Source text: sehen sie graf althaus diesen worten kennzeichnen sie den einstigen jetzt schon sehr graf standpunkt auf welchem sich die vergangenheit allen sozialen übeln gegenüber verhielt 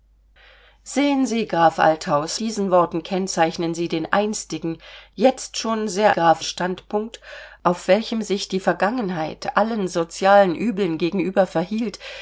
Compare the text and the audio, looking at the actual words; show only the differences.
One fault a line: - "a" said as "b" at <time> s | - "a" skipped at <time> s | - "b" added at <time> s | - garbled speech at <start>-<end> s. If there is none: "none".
none